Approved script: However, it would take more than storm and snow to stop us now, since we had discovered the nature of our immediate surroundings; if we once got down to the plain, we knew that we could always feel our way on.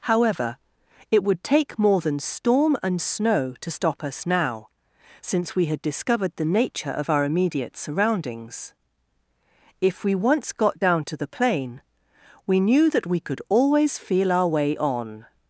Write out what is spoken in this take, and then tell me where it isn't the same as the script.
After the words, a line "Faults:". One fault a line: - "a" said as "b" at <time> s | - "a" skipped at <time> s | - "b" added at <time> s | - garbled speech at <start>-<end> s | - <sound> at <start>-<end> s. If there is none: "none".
However, it would take more than storm and snow to stop us now, since we had discovered the nature of our immediate surroundings; if we once got down to the plain, we knew that we could always feel our way on.
Faults:
none